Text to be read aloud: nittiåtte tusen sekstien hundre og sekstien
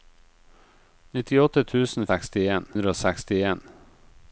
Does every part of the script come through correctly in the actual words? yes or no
yes